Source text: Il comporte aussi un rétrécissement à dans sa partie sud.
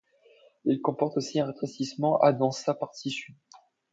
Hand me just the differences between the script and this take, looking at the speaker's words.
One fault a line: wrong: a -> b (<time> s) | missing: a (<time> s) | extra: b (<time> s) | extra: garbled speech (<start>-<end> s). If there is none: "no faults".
no faults